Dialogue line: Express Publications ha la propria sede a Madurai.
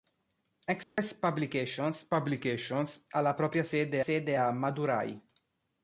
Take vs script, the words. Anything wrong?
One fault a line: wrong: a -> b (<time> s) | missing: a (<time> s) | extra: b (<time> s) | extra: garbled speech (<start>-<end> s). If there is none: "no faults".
extra: Publications (2.1 s)
extra: sede (4.0 s)